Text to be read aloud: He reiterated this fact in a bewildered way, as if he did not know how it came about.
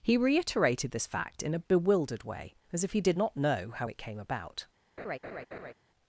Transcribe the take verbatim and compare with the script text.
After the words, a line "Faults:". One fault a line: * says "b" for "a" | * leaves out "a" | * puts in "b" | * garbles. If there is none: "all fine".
He reiterated this fact in a bewildered way, as if he did not know how it came about.
Faults:
all fine